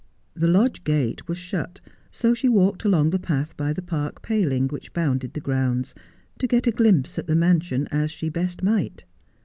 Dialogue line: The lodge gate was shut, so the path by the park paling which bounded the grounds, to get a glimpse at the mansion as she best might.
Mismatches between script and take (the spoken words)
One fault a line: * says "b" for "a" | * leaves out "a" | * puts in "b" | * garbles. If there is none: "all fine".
* puts in "she walked along"